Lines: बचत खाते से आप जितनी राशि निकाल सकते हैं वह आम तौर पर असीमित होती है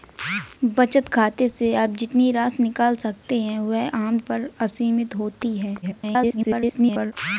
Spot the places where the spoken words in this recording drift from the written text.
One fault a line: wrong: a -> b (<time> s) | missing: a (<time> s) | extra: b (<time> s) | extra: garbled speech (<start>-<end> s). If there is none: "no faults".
missing: तौर (4.2 s)
extra: garbled speech (5.8-7.1 s)